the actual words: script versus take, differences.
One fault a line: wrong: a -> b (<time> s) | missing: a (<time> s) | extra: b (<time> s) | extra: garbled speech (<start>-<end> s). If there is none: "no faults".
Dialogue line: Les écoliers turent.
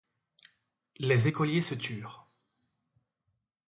extra: se (1.6 s)